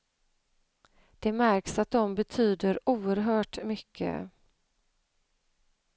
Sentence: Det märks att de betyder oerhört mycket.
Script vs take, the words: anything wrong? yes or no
no